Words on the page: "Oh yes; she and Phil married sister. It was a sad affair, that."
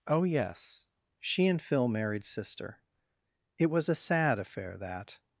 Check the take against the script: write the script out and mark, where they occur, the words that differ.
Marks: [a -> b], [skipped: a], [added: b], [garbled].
"Oh yes; she and Phil married sister. It was a sad affair, that."